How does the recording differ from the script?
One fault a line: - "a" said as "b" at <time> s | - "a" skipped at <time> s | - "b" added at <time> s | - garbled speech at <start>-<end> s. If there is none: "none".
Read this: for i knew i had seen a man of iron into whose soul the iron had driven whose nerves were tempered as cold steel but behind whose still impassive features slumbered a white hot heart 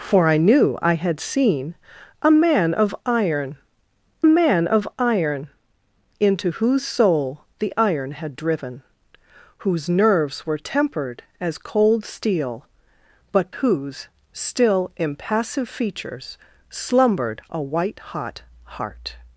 - "man of iron" added at 4.2 s
- "behind" skipped at 13.5 s